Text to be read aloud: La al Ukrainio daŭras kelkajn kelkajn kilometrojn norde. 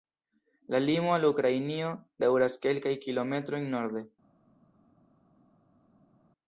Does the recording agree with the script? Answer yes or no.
no